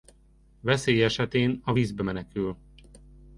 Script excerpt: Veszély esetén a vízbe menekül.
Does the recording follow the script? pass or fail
pass